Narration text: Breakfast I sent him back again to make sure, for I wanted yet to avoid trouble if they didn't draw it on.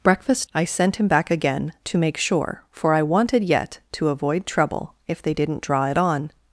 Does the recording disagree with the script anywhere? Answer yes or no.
no